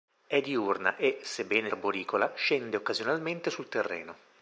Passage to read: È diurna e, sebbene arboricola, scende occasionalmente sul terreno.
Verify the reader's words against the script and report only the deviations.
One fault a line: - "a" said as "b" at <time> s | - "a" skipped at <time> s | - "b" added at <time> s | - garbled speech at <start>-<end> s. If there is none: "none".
none